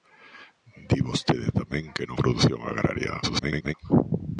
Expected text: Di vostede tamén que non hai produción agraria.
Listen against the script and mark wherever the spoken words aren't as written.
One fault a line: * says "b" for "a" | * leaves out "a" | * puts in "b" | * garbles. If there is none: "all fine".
* leaves out "hai"
* garbles